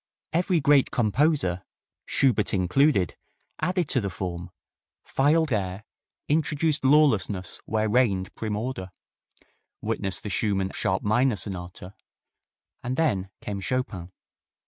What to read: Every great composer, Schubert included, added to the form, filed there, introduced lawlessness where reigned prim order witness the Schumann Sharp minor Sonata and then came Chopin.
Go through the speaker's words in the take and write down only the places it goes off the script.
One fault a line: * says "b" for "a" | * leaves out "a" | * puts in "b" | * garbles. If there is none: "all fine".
all fine